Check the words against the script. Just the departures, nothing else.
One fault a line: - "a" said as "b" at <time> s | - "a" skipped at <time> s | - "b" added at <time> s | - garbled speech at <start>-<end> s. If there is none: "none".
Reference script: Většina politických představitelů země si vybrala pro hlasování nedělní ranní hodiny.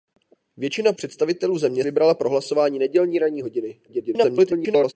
- "politických" skipped at 0.9 s
- "si" skipped at 1.8 s
- garbled speech at 3.9-4.9 s